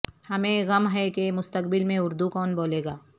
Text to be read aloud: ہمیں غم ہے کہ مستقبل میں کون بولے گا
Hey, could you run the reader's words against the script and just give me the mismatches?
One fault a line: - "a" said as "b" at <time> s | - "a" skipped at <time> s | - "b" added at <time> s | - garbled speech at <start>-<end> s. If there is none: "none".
- "اردو" added at 2.0 s